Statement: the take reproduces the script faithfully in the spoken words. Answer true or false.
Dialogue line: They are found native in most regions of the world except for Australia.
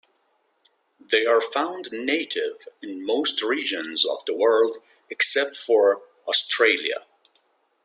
true